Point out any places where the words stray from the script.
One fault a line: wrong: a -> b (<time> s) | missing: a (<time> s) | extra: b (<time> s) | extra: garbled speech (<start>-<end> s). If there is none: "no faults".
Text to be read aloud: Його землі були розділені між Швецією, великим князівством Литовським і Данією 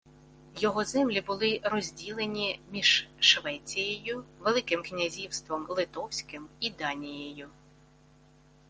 no faults